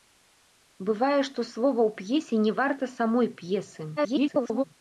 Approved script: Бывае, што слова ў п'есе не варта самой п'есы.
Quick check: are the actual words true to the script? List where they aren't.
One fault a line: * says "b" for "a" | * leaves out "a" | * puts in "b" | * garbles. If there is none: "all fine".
* garbles